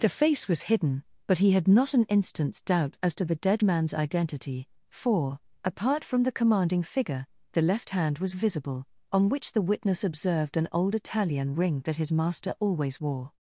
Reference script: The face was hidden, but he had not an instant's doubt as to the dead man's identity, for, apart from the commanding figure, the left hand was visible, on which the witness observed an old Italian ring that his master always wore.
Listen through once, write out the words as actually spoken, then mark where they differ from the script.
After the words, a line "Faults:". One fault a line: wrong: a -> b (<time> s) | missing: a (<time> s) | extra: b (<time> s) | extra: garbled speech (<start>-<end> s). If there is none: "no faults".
The face was hidden, but he had not an instant's doubt as to the dead man's identity, for, apart from the commanding figure, the left hand was visible, on which the witness observed an old Italian ring that his master always wore.
Faults:
no faults